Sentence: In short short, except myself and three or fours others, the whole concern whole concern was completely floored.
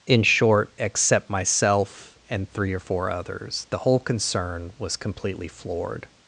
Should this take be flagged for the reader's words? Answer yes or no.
yes